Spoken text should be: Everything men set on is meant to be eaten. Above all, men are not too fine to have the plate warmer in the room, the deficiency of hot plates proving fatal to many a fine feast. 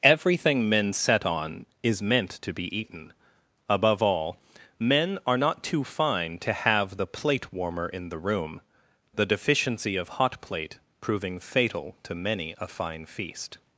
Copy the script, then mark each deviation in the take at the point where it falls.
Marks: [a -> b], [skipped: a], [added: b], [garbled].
Everything men set on is meant to be eaten. Above all, men are not too fine to have the plate warmer in the room, the deficiency of hot [plates -> plate] proving fatal to many a fine feast.